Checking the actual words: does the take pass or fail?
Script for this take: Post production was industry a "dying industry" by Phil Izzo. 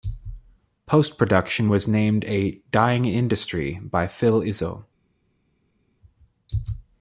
fail